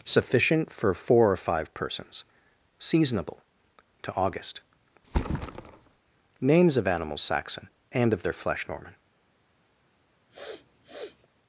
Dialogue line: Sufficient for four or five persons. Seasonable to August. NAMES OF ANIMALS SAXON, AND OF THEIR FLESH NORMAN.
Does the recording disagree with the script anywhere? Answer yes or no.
no